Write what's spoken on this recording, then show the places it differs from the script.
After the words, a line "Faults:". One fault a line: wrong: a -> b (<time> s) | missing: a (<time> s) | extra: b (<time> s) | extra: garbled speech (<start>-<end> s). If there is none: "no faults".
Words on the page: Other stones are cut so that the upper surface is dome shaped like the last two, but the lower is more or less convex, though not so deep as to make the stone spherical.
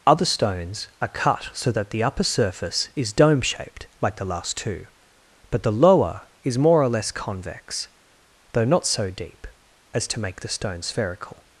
Other stones are cut so that the upper surface is dome shaped like the last two, but the lower is more or less convex, though not so deep as to make the stone spherical.
Faults:
no faults